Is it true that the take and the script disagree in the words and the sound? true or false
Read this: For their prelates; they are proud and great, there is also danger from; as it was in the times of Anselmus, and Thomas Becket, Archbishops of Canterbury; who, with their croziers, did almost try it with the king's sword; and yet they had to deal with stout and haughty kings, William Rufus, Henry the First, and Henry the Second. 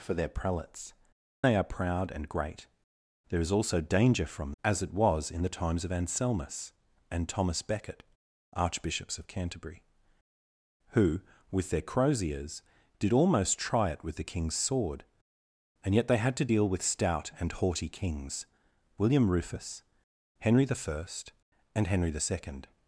false